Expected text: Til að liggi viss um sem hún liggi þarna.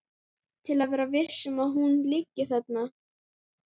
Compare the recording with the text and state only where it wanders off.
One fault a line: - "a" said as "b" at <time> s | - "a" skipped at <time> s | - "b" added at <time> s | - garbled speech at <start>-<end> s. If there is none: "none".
- "liggi" said as "vera" at 0.9 s
- "sem" said as "að" at 1.7 s